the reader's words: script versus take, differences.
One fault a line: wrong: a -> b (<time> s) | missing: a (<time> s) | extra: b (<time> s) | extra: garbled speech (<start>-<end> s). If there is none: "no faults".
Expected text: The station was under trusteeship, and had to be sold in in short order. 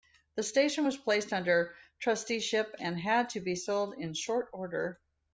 extra: placed (1.0 s)
missing: in (4.1 s)